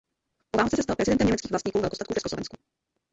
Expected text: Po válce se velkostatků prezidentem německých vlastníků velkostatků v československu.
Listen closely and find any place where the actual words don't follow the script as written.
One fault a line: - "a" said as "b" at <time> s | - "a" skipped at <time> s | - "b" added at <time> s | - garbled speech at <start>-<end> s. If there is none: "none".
- "velkostatků" said as "stal" at 0.8 s